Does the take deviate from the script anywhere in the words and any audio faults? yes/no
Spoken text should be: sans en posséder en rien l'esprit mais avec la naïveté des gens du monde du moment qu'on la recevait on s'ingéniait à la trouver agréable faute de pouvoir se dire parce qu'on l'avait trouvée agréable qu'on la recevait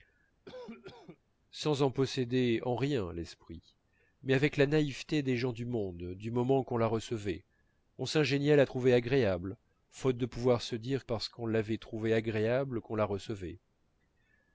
yes